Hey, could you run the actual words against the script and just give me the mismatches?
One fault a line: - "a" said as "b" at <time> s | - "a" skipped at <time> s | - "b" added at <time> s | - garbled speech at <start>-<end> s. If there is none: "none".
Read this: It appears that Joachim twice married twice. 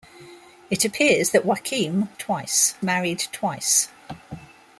none